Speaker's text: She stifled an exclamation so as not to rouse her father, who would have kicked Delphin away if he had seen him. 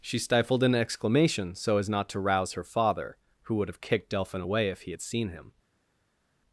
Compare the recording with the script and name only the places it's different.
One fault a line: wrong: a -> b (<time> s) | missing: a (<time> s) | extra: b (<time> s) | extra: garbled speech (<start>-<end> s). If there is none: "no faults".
no faults